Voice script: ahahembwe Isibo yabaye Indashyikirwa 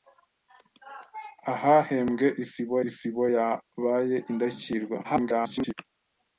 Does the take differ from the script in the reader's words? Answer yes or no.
yes